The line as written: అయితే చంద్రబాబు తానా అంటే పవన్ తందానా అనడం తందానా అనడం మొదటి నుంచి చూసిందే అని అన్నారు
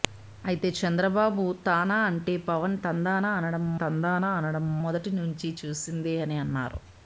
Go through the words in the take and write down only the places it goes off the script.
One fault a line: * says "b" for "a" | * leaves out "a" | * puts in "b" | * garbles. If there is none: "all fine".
all fine